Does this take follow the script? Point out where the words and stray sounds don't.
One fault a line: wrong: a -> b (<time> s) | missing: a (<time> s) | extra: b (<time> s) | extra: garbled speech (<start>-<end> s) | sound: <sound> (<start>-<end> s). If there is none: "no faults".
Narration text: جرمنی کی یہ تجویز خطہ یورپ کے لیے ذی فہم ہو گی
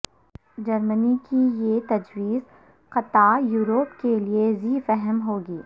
no faults